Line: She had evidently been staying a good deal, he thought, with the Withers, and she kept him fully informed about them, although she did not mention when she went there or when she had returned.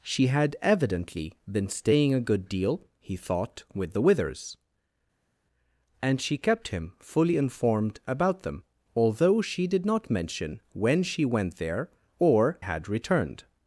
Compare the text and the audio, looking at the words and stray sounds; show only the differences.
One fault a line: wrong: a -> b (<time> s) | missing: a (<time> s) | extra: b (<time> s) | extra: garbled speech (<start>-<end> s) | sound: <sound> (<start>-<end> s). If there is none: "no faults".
missing: when she (12.6 s)